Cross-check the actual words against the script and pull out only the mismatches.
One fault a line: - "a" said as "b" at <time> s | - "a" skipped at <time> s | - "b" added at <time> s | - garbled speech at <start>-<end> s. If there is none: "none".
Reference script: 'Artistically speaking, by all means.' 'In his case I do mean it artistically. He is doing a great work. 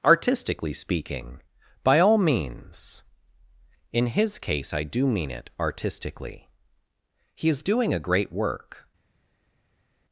none